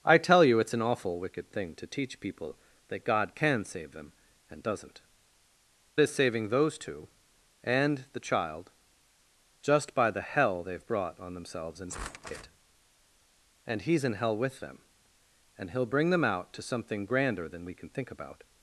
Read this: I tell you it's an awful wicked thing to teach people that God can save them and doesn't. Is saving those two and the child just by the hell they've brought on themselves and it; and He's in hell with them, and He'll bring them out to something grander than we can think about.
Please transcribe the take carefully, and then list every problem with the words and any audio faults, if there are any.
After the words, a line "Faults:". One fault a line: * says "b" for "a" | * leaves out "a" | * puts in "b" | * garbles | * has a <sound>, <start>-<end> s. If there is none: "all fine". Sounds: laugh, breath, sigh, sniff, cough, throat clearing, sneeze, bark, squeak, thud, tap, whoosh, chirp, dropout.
I tell you it's an awful wicked thing to teach people that God can save them and doesn't. Is saving those two and the child just by the hell they've brought on themselves and it; and He's in hell with them, and He'll bring them out to something grander than we can think about.
Faults:
all fine